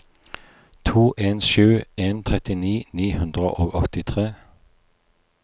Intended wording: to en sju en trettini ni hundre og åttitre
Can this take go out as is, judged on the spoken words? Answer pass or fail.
pass